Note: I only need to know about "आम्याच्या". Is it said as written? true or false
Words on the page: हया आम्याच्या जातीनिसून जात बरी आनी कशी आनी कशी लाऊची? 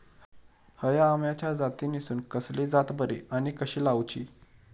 true